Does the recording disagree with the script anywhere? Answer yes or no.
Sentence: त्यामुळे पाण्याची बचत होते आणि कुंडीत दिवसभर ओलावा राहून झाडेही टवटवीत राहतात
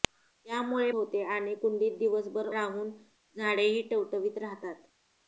yes